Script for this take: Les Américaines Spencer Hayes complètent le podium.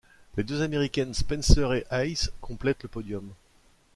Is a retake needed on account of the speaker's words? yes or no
yes